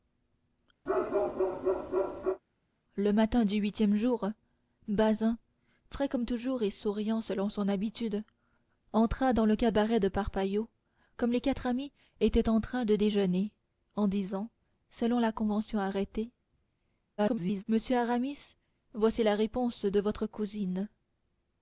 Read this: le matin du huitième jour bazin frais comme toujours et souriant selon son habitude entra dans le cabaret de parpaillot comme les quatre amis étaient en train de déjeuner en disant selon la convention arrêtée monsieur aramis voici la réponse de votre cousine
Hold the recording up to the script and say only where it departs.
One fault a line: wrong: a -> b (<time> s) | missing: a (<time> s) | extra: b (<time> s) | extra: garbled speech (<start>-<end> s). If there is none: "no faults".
extra: garbled speech (17.2-17.6 s)